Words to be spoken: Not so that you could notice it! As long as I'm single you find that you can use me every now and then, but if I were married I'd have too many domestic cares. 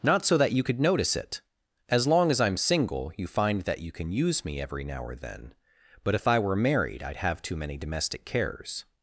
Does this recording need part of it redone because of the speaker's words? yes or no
yes